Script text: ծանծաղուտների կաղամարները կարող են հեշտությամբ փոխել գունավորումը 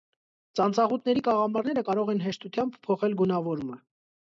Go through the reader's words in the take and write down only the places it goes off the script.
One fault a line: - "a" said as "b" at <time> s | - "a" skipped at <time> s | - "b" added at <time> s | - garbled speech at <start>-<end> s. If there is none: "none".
none